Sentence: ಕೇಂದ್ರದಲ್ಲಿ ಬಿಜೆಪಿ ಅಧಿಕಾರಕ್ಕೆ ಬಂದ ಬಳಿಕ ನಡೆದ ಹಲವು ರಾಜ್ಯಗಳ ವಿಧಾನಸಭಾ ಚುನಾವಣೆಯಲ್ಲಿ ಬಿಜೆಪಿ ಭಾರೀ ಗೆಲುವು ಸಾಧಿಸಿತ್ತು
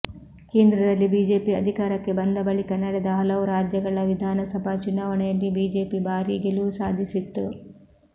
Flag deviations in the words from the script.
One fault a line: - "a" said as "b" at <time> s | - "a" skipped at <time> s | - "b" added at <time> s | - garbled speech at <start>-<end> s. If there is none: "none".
none